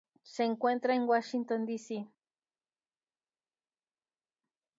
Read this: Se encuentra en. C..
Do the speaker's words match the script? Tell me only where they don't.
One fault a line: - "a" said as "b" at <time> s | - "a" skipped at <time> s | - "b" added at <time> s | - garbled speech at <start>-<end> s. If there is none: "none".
- "Washington D" added at 1.0 s